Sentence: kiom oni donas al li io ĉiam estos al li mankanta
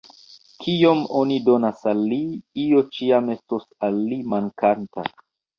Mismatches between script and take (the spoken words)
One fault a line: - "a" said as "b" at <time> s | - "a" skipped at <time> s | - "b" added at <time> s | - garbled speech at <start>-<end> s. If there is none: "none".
none